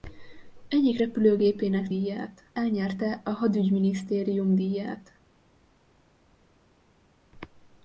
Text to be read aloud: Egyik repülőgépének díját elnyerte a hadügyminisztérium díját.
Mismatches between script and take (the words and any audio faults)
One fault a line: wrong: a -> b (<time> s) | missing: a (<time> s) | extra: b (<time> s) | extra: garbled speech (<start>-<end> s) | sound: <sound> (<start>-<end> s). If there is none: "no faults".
no faults